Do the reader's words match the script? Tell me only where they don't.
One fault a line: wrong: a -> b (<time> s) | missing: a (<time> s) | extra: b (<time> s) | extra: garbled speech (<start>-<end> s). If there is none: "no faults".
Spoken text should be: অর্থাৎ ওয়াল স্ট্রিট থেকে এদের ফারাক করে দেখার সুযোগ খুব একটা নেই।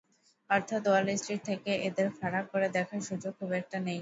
no faults